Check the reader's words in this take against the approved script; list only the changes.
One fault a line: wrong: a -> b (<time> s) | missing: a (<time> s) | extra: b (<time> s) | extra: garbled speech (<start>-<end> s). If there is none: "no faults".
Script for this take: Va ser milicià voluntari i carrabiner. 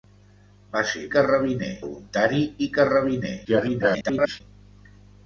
wrong: milicià -> carrabiner (1.2 s)
extra: garbled speech (3.4-4.4 s)